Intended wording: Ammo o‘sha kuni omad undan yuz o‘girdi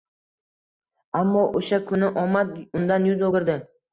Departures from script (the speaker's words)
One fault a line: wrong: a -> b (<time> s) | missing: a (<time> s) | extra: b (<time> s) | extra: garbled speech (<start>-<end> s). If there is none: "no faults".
no faults